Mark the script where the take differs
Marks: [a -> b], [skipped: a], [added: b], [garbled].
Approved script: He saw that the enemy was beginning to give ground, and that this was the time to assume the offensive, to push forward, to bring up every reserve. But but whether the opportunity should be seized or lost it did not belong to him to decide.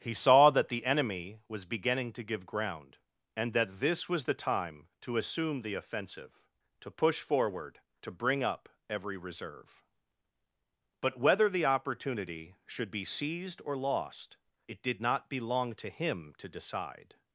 He saw that the enemy was beginning to give ground, and that this was the time to assume the offensive, to push forward, to bring up every reserve. But [skipped: but] whether the opportunity should be seized or lost it did not belong to him to decide.